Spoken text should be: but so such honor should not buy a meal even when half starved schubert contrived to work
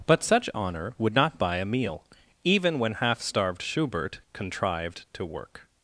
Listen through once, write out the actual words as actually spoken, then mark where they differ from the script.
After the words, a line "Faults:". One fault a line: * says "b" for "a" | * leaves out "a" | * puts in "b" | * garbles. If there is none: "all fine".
but such honor would not buy a meal even when half starved schubert contrived to work
Faults:
* leaves out "so"
* says "would" for "should"